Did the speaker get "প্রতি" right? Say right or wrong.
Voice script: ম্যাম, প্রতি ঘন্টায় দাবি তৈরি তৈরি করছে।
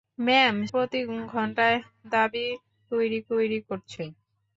right